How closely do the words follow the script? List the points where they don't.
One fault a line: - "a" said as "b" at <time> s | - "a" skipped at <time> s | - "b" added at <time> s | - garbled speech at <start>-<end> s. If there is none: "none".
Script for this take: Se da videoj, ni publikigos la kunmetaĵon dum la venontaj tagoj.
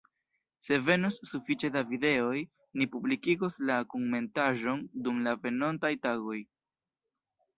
- "venos sufiĉe" added at 0.8 s